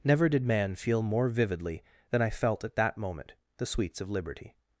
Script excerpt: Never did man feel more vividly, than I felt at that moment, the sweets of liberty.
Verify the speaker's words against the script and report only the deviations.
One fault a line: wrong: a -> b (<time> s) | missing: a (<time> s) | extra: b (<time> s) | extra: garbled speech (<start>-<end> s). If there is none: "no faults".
no faults